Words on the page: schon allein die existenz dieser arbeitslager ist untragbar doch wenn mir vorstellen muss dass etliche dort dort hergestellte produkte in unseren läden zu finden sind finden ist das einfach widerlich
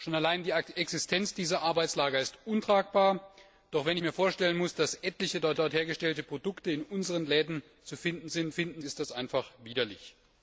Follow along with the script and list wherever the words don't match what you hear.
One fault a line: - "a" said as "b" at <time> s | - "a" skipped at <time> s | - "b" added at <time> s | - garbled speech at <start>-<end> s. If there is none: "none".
none